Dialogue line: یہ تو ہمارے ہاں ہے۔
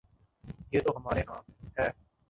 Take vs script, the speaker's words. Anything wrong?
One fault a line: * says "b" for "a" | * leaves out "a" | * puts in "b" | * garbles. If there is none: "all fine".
all fine